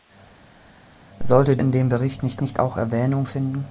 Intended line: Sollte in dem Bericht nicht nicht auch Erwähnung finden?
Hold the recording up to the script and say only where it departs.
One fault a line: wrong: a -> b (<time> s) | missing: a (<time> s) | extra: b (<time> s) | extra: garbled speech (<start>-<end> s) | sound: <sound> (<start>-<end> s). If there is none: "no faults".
no faults